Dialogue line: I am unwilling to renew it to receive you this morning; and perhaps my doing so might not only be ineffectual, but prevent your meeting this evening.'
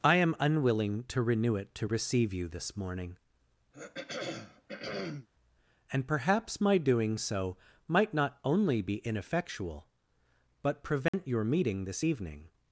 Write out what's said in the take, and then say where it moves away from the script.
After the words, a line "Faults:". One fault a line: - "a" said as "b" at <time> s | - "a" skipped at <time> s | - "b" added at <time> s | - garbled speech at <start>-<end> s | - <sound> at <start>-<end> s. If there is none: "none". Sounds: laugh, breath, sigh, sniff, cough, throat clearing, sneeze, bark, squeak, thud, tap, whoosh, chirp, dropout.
I am unwilling to renew it to receive you this morning; and perhaps my doing so might not only be ineffectual, but prevent your meeting this evening.'
Faults:
- throat clearing at 3.7-5.3 s
- dropout at 11.1-11.1 s